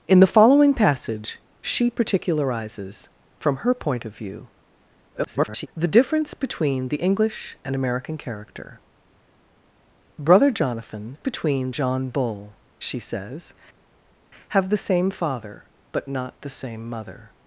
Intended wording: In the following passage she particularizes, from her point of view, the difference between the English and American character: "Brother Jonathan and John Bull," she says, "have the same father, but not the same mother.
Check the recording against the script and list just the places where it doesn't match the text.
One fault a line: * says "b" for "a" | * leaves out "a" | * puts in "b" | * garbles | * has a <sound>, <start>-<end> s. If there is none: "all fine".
* garbles
* says "between" for "and"